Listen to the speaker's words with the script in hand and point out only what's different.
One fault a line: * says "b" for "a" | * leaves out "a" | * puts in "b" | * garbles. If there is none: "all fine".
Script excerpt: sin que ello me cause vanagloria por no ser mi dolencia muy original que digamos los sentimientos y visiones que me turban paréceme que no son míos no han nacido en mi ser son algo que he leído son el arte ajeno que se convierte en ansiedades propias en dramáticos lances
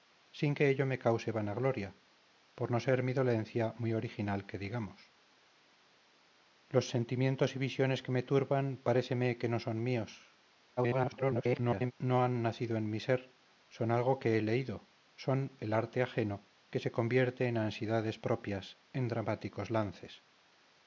* garbles